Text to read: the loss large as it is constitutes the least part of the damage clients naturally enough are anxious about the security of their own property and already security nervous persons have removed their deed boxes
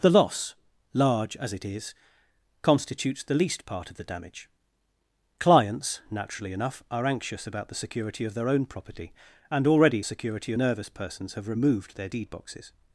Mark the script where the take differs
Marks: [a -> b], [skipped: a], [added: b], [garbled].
the loss large as it is constitutes the least part of the damage clients naturally enough are anxious about the security of their own property and already security nervous persons have removed their deed boxes